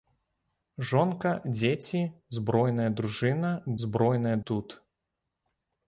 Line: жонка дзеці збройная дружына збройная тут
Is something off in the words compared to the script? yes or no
no